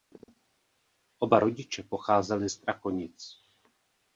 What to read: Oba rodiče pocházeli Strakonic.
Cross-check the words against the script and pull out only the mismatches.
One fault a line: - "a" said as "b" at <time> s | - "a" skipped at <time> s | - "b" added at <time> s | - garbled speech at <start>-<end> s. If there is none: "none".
none